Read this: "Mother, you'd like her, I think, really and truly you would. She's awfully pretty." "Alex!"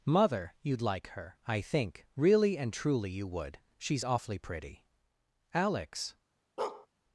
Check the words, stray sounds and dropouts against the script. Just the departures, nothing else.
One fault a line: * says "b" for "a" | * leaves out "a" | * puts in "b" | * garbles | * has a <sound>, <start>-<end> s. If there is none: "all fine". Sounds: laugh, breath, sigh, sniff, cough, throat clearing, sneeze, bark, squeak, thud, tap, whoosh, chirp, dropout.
* has a bark, 6.6-6.9 s